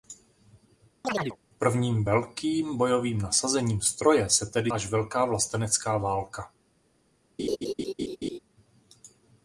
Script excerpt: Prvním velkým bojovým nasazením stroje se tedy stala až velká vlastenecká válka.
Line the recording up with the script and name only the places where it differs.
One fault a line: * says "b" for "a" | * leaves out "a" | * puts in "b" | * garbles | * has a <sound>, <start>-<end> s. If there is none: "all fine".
* has a chirp, 1.0-1.4 s
* leaves out "stala"
* has a laugh, 7.4-8.4 s